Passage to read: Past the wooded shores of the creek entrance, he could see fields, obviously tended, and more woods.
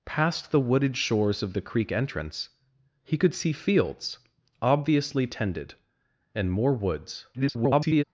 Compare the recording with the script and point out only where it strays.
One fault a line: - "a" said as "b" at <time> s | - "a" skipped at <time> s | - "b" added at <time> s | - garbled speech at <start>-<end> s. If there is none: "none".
- garbled speech at 7.3-8.0 s